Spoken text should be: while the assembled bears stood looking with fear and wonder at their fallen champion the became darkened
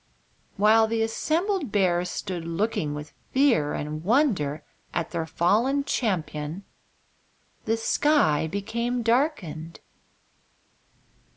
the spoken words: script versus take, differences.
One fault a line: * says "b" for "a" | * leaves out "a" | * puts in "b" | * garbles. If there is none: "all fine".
* puts in "sky"